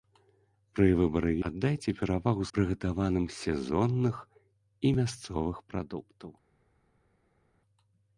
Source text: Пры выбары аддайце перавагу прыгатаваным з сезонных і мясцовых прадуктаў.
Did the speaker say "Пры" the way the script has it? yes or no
yes